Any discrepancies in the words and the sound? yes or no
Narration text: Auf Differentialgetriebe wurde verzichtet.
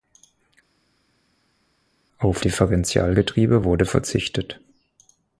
no